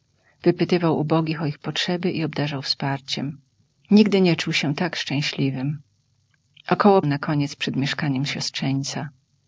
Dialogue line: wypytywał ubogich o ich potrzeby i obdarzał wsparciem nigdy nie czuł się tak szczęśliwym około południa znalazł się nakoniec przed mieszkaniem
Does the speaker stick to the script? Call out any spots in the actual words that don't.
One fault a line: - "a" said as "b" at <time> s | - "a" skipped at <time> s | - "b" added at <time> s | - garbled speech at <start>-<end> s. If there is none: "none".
- "południa znalazł się" skipped at 7.0 s